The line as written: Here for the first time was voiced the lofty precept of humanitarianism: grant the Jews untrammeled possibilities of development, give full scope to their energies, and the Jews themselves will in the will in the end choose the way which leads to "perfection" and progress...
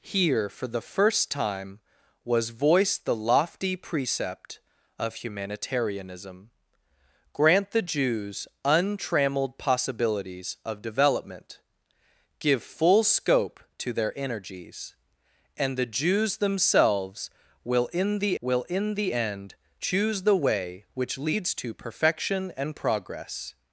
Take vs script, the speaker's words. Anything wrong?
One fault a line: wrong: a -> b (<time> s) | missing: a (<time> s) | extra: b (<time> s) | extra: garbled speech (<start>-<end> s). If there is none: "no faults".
no faults